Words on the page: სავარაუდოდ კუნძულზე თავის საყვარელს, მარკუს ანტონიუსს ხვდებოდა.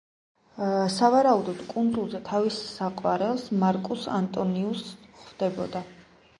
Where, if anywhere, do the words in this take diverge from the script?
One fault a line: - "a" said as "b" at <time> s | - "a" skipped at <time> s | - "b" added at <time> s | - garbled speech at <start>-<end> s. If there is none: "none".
none